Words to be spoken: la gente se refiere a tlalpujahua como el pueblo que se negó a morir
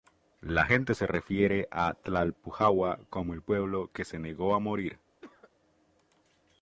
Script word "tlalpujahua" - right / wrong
right